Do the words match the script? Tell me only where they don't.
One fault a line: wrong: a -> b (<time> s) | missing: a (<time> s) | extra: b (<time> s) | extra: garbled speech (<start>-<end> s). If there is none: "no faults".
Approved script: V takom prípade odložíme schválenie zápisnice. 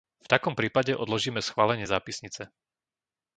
no faults